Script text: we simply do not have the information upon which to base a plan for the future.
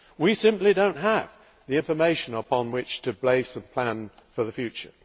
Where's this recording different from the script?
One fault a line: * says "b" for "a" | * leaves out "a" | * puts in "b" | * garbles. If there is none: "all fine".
all fine